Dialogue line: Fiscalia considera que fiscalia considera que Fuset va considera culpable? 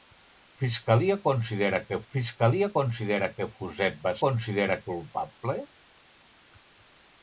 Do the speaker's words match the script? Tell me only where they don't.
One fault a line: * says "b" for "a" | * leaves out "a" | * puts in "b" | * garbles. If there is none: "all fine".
all fine